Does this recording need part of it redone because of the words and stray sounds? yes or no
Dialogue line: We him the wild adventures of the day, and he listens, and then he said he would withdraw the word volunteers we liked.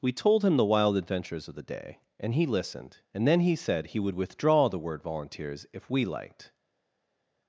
yes